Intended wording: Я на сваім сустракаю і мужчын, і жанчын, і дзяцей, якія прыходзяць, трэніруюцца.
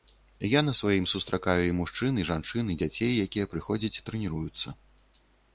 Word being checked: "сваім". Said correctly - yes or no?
yes